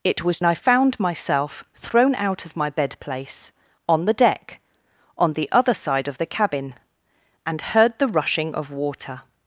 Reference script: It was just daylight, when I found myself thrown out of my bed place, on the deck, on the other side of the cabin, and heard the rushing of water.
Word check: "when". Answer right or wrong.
wrong